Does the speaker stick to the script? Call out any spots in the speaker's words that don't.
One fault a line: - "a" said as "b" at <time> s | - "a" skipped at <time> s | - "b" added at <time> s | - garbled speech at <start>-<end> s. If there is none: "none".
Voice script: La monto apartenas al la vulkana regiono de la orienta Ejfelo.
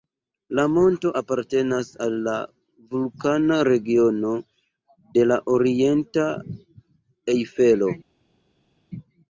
none